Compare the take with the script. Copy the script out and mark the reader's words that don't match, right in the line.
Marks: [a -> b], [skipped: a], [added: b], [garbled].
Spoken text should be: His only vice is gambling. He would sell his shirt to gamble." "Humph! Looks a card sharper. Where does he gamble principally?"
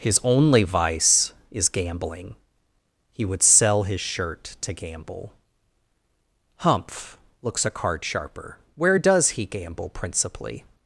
His only vice is gambling. He would sell his shirt to gamble." "Humph! Looks a card sharper. Where does he gamble principally?"